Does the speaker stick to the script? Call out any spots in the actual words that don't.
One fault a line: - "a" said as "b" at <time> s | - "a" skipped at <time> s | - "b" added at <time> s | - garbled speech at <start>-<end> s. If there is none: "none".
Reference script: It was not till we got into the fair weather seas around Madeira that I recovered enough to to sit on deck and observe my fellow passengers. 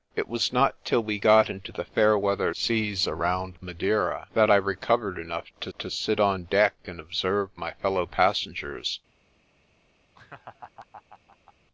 none